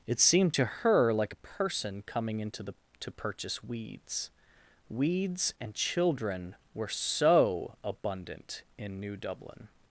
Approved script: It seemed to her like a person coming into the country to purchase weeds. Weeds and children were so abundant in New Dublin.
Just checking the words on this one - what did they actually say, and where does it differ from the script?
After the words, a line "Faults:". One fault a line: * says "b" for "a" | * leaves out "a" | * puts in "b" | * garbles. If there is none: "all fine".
It seemed to her like a person coming into the to purchase weeds. Weeds and children were so abundant in New Dublin.
Faults:
* leaves out "country"